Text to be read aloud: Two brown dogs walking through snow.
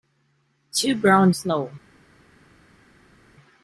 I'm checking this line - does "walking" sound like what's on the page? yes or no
no